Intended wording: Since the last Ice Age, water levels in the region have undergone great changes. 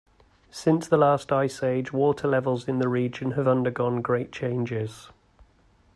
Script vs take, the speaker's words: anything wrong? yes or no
no